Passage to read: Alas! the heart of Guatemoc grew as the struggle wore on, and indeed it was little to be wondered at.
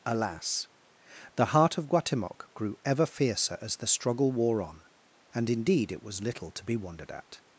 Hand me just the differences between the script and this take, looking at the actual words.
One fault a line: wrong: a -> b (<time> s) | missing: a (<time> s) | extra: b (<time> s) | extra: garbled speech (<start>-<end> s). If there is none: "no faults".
extra: ever fiercer (2.8 s)